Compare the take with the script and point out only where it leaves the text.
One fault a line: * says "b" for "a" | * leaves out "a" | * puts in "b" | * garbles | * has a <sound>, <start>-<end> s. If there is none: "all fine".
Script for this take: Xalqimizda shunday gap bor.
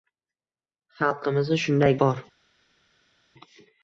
* leaves out "gap"